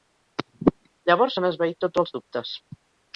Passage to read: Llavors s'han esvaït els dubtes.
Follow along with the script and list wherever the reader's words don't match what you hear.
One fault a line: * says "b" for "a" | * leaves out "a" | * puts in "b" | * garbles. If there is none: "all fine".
* puts in "tots"